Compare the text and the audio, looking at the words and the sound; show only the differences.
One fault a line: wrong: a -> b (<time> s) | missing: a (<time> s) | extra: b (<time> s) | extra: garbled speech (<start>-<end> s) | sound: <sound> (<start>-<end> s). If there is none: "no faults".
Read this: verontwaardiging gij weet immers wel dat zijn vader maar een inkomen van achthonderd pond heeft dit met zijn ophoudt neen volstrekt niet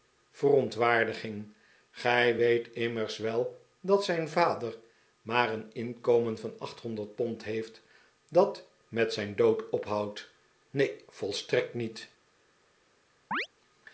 wrong: dit -> dat (8.3 s)
extra: dood (9.4 s)
sound: chirp (13.3-13.5 s)